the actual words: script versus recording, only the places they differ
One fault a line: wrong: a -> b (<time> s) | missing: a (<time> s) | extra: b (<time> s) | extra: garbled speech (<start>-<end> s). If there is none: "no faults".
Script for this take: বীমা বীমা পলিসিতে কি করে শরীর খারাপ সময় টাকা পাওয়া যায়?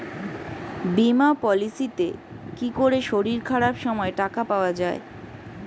missing: বীমা (1.3 s)